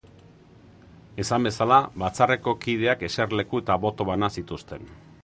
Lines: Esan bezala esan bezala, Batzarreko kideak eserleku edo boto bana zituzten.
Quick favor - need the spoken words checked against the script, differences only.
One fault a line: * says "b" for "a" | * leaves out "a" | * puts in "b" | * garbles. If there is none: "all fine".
* leaves out "esan bezala"
* says "eta" for "edo"